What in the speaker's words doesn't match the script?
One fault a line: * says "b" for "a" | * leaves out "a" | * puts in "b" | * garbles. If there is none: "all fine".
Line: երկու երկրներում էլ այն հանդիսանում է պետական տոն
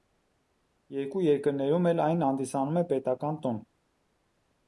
all fine